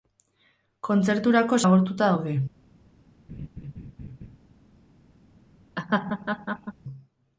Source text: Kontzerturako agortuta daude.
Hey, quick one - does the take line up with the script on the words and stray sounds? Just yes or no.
no